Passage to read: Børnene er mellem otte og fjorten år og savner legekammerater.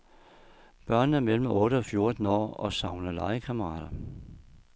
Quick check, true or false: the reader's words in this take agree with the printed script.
true